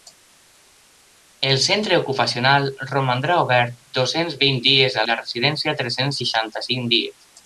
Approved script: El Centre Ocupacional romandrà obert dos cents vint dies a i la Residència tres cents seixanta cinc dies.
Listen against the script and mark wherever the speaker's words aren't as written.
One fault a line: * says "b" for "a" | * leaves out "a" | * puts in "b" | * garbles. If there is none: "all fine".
all fine